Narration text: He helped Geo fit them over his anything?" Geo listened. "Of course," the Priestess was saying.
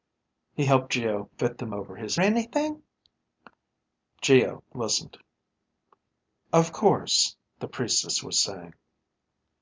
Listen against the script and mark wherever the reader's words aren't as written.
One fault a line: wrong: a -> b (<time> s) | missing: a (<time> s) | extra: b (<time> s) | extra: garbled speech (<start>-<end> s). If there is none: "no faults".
no faults